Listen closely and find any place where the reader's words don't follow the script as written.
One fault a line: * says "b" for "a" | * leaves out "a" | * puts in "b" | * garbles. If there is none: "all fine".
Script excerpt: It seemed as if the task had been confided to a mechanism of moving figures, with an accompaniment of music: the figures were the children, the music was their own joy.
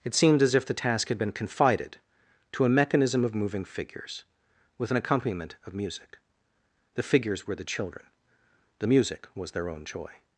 all fine